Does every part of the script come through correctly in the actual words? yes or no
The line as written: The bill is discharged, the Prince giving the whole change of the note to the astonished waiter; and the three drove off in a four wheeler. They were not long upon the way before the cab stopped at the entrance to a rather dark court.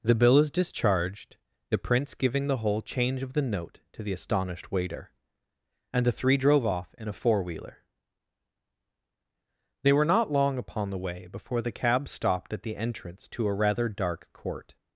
yes